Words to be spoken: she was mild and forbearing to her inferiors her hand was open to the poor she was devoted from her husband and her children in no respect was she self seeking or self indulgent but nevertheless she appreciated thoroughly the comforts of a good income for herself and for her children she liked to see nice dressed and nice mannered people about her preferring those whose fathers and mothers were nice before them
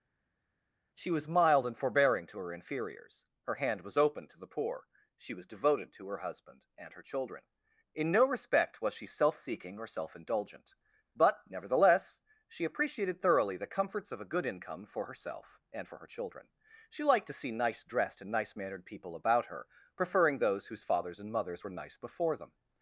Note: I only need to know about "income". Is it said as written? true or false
true